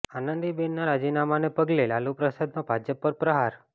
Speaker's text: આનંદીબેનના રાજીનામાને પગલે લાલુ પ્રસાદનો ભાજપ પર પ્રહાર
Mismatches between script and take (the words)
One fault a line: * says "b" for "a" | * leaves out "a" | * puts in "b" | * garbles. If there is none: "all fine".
all fine